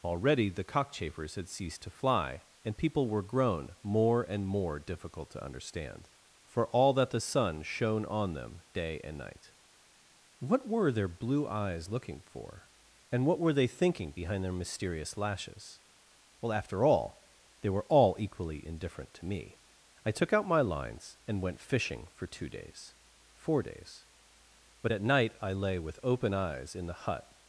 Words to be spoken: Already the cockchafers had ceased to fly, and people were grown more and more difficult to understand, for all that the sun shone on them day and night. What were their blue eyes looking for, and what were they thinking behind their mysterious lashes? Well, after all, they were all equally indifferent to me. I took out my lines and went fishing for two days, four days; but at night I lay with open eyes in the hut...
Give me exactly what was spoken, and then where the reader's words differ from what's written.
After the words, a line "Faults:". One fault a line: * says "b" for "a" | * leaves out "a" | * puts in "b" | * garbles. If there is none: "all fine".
Already the cockchafers had ceased to fly, and people were grown more and more difficult to understand, for all that the sun shone on them day and night. What were their blue eyes looking for, and what were they thinking behind their mysterious lashes? Well, after all, they were all equally indifferent to me. I took out my lines and went fishing for two days, four days; but at night I lay with open eyes in the hut...
Faults:
all fine